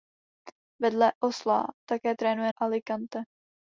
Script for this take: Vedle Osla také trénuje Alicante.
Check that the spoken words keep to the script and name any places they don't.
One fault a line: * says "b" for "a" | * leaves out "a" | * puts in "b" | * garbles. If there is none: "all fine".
all fine